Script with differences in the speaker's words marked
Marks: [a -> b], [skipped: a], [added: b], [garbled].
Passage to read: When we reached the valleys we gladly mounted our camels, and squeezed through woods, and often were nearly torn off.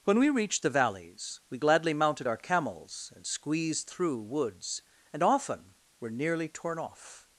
When we reached the valleys we gladly mounted our camels, and squeezed through woods, and often were nearly torn off.